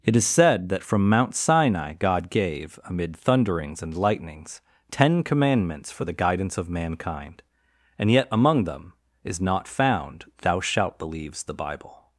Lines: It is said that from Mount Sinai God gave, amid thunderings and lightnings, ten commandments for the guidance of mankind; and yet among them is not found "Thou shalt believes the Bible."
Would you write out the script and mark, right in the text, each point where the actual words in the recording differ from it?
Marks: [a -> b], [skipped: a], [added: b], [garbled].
It is said that from Mount Sinai God gave, amid thunderings and lightnings, ten commandments for the guidance of mankind; and yet among them is not found "Thou shalt believes the Bible."